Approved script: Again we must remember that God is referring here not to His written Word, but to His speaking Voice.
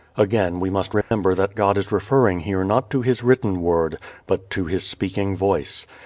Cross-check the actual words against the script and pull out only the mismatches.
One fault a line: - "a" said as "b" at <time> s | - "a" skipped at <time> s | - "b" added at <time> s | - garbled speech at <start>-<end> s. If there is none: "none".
none